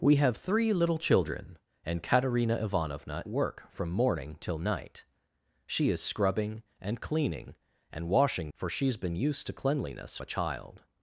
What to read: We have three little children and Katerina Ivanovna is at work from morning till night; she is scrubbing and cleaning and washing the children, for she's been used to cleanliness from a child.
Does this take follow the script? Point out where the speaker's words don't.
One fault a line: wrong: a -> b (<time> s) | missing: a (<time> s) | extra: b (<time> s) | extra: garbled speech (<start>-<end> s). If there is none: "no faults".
missing: is at (3.2 s)
missing: the children (8.5 s)
missing: from (10.2 s)